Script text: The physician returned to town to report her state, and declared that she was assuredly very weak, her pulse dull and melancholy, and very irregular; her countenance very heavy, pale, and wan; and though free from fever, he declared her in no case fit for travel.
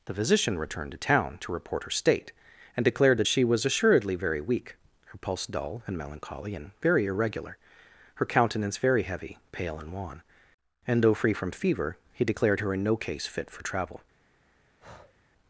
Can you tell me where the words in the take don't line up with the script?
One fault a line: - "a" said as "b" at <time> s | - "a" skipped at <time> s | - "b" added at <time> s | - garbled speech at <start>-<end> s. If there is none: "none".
none